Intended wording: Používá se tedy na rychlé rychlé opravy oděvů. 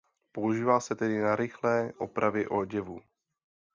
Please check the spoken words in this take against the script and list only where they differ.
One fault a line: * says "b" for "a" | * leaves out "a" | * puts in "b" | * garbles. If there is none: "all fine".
* leaves out "rychlé"